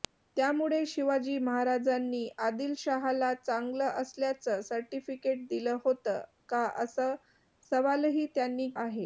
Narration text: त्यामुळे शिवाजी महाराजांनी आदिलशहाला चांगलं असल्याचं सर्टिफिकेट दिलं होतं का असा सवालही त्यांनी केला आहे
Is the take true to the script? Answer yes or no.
no